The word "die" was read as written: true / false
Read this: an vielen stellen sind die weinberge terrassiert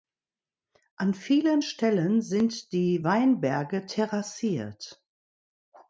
true